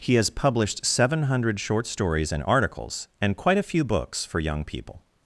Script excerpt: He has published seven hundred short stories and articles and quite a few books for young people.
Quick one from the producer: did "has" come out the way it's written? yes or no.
yes